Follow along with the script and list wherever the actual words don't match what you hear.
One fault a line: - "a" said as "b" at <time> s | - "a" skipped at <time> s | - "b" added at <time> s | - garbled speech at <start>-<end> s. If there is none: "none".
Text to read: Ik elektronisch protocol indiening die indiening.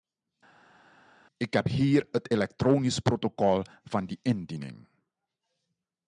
- "heb hier het" added at 1.5 s
- "indiening" said as "van" at 3.8 s